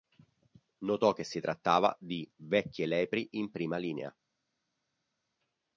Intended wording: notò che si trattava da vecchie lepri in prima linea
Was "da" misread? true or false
true